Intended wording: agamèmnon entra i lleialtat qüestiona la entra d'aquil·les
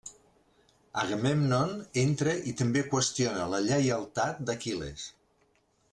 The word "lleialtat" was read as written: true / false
false